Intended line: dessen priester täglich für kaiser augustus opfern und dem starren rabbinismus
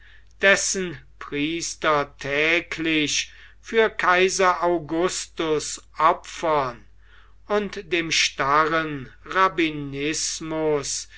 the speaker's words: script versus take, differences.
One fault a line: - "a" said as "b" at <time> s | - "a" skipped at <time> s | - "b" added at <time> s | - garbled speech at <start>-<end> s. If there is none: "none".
none